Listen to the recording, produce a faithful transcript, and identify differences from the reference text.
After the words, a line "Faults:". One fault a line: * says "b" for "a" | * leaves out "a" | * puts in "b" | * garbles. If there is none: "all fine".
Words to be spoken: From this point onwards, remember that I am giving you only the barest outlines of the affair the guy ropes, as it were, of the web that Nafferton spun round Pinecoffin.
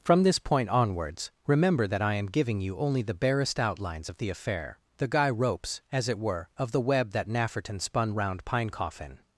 From this point onwards, remember that I am giving you only the barest outlines of the affair the guy ropes, as it were, of the web that Nafferton spun round Pinecoffin.
Faults:
all fine